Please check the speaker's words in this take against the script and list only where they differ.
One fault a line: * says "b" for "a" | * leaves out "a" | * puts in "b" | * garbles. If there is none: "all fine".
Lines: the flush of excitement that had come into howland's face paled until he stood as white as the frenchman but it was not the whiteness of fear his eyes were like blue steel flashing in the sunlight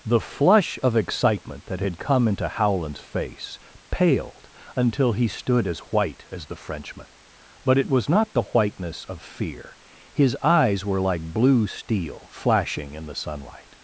all fine